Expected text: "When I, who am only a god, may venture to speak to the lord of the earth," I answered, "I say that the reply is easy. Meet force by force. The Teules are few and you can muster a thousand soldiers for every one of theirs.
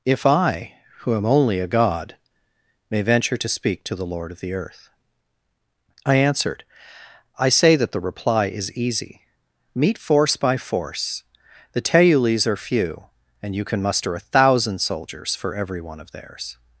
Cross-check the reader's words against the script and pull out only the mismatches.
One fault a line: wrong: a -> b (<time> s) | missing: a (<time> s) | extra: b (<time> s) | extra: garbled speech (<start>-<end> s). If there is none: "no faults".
wrong: When -> If (0.1 s)